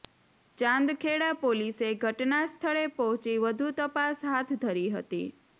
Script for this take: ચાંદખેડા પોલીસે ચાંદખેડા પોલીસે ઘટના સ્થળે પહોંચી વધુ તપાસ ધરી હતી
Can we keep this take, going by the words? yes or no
no